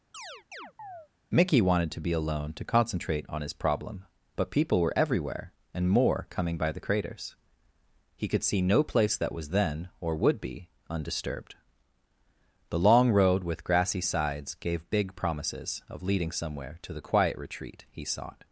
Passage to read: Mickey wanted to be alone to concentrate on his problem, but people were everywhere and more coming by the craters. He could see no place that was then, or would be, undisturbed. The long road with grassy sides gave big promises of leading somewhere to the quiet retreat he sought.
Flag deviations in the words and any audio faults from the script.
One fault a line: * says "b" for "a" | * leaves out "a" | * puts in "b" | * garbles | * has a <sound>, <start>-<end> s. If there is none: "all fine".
* has a chirp, 0.1-1.1 s